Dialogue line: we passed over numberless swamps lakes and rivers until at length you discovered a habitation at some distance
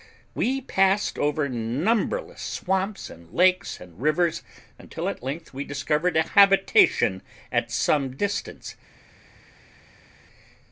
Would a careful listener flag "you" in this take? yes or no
yes